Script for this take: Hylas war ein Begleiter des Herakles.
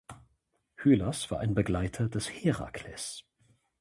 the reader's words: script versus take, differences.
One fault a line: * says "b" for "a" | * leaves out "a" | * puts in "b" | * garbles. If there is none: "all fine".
all fine